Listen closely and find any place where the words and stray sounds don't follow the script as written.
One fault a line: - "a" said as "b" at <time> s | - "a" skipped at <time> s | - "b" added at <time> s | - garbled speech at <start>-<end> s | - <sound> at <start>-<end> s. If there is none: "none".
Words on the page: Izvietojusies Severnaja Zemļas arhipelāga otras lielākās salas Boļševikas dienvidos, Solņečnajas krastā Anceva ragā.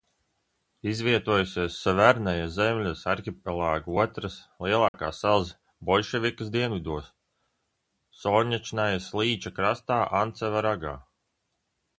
- dropout at 4.9-4.9 s
- "līča" added at 9.2 s